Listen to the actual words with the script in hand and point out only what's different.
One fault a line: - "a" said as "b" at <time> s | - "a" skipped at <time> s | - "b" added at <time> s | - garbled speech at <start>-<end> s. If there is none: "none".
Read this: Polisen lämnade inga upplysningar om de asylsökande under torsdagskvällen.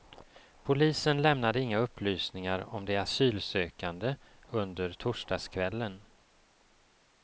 none